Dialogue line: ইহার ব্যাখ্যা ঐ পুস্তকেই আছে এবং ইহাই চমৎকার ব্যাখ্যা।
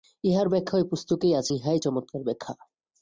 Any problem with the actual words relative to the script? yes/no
yes